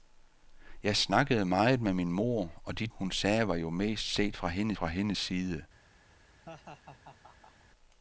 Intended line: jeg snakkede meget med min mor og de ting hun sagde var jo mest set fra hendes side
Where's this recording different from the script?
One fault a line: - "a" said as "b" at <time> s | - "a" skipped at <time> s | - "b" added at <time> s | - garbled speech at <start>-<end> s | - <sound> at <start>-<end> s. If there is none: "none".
- "ting" skipped at 2.9 s
- "fra hendes" added at 4.7 s
- laugh at 6.5-7.7 s